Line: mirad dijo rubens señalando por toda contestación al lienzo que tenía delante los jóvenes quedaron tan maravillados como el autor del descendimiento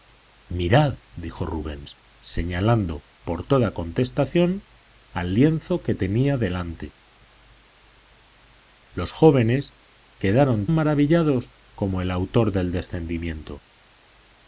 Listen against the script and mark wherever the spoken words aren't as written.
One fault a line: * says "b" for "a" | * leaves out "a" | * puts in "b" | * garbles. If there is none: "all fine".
* leaves out "tan"